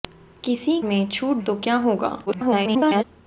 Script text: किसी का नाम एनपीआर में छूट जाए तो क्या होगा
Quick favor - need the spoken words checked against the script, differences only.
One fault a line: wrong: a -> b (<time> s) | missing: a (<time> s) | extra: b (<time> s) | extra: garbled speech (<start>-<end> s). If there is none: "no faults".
missing: का नाम एनपीआर (0.8 s)
missing: जाए (1.4 s)
extra: garbled speech (2.3-3.0 s)